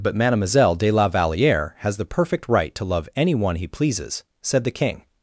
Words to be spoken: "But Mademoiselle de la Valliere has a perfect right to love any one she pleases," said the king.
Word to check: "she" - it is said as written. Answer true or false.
false